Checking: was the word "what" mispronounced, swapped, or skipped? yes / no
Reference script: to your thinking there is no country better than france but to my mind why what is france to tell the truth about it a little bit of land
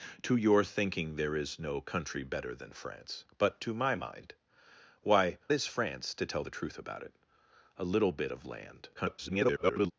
yes